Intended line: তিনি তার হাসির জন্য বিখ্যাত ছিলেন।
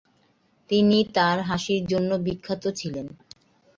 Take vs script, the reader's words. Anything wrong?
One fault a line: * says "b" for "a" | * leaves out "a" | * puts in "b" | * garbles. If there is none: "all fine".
all fine